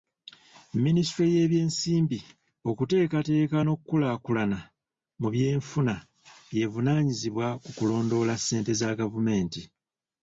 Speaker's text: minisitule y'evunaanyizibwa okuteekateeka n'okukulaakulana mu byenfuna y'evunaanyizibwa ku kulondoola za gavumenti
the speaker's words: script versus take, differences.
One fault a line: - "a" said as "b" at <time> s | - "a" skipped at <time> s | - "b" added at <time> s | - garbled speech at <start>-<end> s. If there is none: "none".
- "y'evunaanyizibwa" said as "y'ebyensimbi" at 1.4 s
- "ssente" added at 8.4 s